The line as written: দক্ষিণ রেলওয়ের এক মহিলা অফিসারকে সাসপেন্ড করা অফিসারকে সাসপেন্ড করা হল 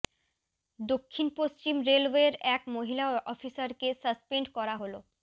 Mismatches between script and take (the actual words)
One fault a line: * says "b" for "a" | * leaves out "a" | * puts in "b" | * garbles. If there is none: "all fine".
* puts in "পশ্চিম"
* leaves out "অফিসারকে সাসপেন্ড করা"